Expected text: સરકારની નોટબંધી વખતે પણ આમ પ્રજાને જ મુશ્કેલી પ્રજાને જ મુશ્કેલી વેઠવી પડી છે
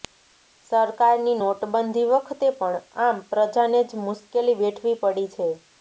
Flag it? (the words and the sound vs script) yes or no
yes